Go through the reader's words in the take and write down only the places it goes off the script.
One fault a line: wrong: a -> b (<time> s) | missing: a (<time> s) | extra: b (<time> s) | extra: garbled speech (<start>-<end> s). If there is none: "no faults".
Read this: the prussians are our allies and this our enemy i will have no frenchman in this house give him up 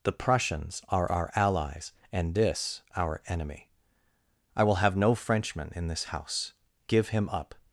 no faults